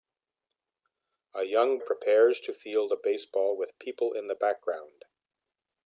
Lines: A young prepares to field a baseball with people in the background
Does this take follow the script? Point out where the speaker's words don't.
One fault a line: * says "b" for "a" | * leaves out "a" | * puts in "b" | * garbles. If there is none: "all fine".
all fine